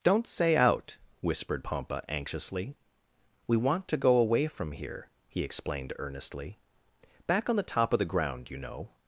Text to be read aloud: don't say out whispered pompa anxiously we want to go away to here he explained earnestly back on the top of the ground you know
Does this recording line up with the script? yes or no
no